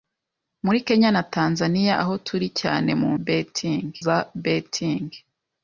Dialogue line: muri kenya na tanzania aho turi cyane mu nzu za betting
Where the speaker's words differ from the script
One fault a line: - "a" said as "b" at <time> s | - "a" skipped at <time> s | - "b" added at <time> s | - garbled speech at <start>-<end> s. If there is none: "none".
- "nzu" said as "betting" at 3.2 s